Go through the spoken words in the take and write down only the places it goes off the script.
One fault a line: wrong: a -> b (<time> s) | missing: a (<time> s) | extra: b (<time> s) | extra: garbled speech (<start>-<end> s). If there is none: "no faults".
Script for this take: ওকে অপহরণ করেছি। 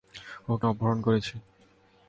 no faults